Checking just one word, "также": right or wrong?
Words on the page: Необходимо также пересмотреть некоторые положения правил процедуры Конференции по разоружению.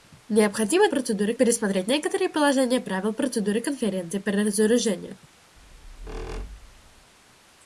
wrong